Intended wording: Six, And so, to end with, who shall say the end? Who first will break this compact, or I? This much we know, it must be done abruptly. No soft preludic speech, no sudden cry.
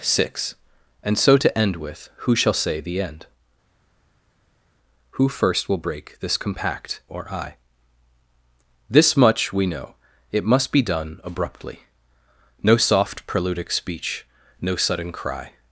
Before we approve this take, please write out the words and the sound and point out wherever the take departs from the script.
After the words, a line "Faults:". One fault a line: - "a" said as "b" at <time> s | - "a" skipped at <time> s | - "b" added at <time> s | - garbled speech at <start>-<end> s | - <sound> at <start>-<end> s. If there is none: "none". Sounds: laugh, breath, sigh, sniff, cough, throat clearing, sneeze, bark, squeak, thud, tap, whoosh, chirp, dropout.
Six, And so, to end with, who shall say the end? Who first will break this compact, or I? This much we know, it must be done abruptly. No soft preludic speech, no sudden cry.
Faults:
none